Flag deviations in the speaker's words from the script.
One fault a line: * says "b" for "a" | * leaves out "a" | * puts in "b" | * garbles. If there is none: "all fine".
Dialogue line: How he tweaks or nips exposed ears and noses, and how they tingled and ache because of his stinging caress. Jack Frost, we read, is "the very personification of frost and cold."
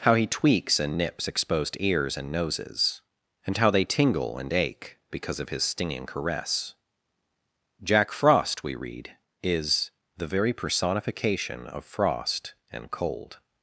* says "and" for "or"
* says "tingle" for "tingled"